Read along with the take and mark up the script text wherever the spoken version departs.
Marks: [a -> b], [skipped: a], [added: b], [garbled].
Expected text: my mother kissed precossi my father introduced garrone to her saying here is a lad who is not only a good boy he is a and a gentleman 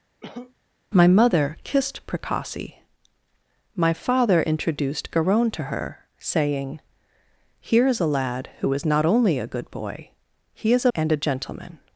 my mother kissed precossi my father introduced garrone to her saying here is a lad who is not only a good boy he is a and a gentleman